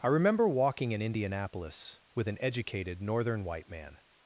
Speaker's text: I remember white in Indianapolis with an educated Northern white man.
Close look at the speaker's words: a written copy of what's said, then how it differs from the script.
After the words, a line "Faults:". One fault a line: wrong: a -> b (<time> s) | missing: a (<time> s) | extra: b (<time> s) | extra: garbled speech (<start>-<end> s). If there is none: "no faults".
I remember walking in Indianapolis with an educated Northern white man.
Faults:
wrong: white -> walking (0.5 s)